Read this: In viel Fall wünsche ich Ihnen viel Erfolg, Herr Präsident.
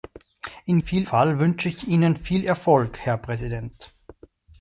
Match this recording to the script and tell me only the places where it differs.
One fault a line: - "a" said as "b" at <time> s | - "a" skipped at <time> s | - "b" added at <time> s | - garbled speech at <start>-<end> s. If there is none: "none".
none